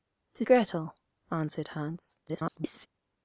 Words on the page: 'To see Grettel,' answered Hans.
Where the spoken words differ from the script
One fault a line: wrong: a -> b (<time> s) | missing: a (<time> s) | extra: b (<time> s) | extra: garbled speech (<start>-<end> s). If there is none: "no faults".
missing: see (0.4 s)
extra: garbled speech (2.3-2.9 s)